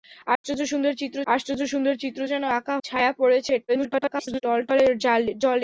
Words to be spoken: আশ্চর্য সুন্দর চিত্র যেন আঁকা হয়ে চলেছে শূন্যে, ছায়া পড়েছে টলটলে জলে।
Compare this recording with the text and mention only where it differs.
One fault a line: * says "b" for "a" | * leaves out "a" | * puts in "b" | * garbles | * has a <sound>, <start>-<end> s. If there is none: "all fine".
* has a dropout, 0.4-0.4 s
* says "আশ্চর্য সুন্দর চিত্র যেন আঁকা" for "যেন আঁকা হয়ে চলেছে শূন্যে"
* garbles